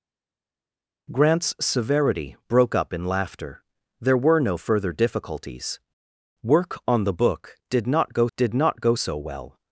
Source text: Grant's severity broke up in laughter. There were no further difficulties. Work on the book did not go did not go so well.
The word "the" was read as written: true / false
true